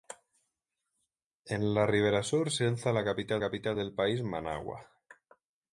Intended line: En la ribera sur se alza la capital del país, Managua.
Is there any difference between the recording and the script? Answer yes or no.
yes